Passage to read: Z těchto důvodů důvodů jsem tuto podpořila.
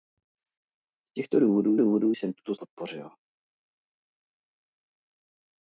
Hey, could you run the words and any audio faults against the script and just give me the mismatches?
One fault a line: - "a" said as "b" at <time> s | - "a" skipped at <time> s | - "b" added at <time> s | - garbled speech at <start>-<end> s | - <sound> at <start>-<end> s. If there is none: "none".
none